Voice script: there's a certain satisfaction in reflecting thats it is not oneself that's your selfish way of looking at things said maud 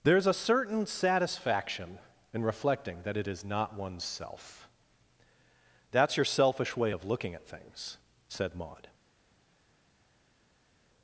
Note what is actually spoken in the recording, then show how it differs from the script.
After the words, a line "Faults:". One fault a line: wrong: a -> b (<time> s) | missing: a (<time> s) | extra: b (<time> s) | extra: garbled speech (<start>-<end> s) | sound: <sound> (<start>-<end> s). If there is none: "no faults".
there's a certain satisfaction in reflecting that it is not oneself that's your selfish way of looking at things said maud
Faults:
wrong: thats -> that (3.0 s)